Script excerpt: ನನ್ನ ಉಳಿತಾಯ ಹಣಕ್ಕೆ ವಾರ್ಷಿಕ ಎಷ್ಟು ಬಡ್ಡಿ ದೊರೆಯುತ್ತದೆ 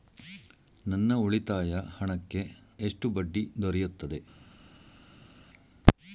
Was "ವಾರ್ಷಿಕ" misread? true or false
true